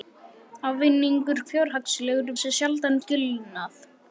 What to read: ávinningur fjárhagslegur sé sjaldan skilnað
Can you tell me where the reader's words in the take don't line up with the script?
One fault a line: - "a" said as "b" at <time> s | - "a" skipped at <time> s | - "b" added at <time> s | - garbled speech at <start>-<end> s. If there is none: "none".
none